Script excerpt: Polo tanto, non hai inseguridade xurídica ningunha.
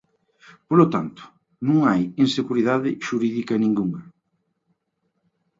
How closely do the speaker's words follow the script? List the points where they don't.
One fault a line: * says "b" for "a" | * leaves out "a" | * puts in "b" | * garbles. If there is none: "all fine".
all fine